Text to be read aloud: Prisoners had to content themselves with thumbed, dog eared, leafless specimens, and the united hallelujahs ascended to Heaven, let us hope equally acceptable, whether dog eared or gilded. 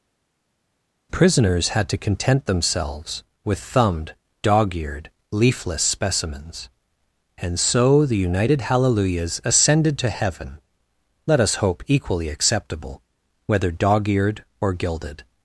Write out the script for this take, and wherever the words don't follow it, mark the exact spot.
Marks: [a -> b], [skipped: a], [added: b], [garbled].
Prisoners had to content themselves with thumbed, dog eared, leafless specimens, and [added: so] the united hallelujahs ascended to Heaven, let us hope equally acceptable, whether dog eared or gilded.